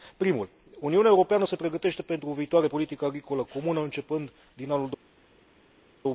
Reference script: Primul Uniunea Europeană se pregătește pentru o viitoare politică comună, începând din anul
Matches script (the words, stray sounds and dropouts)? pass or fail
fail